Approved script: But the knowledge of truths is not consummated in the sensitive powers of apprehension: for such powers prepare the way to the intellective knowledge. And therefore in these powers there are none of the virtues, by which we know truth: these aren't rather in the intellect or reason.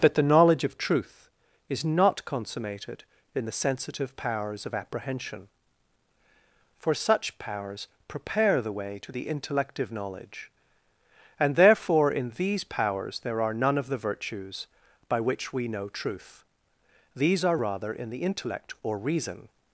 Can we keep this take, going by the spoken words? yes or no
no